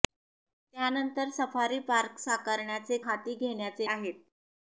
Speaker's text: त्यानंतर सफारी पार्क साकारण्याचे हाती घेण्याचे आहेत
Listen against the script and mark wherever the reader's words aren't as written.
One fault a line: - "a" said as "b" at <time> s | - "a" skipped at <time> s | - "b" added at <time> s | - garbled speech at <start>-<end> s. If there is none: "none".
none